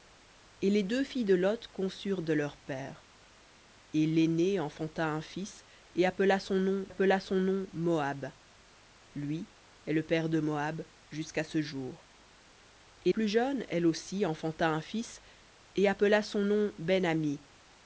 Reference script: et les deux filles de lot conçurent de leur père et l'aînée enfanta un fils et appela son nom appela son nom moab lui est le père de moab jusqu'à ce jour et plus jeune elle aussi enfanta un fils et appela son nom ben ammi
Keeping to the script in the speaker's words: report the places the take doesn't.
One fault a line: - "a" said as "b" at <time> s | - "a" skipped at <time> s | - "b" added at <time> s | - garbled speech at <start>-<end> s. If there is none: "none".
none